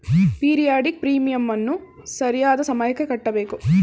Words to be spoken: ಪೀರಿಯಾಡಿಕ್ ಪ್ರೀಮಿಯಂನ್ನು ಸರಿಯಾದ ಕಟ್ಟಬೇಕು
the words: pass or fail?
fail